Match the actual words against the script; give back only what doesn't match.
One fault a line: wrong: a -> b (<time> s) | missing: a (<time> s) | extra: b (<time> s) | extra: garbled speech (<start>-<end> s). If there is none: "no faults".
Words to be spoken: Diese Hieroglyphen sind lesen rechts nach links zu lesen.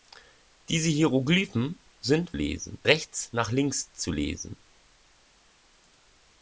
no faults